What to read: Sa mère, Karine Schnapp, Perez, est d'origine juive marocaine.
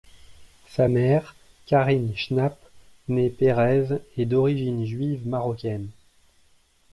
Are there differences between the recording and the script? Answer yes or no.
yes